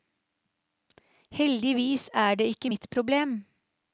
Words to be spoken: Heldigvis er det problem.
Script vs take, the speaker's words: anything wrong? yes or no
yes